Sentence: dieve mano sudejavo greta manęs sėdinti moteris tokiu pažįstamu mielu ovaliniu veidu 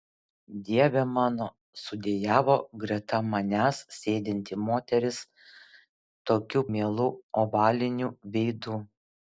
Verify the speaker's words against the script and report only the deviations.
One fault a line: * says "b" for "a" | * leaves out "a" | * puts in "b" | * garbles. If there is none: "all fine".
* leaves out "pažįstamu"